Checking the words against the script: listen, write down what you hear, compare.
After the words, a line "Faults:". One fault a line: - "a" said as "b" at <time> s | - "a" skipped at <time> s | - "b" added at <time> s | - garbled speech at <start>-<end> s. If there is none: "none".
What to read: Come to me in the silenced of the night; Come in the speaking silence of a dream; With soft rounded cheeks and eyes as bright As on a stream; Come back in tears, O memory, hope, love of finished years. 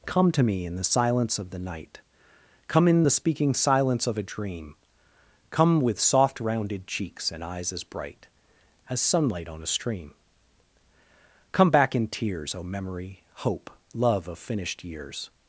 Come to me in the silence of the night; Come in the speaking silence of a dream; Come with soft rounded cheeks and eyes as bright As sunlight on a stream; Come back in tears, O memory, hope, love of finished years.
Faults:
- "silenced" said as "silence" at 0.8 s
- "Come" added at 5.5 s
- "sunlight" added at 9.0 s